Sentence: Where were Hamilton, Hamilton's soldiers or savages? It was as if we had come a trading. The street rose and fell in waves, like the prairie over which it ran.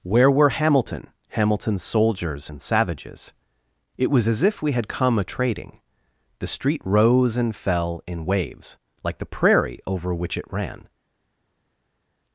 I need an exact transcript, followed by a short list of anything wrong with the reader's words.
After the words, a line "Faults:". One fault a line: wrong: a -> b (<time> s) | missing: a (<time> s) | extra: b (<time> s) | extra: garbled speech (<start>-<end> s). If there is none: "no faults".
Where were Hamilton, Hamilton's soldiers and savages? It was as if we had come a trading. The street rose and fell in waves, like the prairie over which it ran.
Faults:
wrong: or -> and (2.5 s)